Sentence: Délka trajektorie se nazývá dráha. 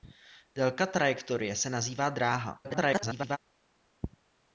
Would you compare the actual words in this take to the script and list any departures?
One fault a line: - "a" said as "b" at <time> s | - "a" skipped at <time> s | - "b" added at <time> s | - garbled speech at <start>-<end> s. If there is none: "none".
- garbled speech at 2.6-3.4 s